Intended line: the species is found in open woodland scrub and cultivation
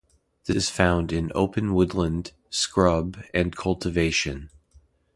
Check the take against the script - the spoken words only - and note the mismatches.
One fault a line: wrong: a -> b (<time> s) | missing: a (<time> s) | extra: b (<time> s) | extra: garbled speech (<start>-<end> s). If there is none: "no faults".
missing: species (0.6 s)